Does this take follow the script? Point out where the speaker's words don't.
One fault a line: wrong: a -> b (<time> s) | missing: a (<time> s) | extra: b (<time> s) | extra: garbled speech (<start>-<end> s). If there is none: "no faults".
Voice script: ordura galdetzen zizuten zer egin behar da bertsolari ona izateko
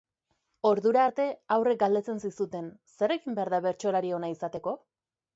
extra: arte haurrek (1.1 s)